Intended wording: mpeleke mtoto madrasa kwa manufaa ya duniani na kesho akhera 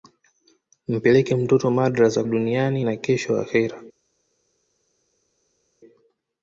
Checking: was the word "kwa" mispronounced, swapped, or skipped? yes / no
yes